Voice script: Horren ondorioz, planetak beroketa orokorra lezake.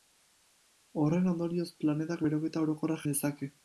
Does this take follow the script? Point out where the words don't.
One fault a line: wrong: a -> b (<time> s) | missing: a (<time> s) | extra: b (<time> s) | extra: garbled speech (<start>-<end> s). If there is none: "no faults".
no faults